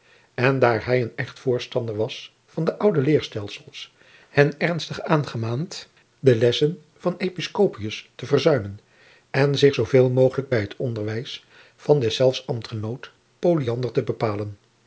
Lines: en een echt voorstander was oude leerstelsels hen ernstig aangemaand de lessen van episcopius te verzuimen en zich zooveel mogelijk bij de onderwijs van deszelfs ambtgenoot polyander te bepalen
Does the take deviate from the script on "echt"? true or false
false